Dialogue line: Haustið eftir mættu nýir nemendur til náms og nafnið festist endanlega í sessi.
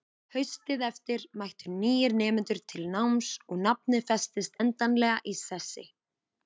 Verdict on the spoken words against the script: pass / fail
pass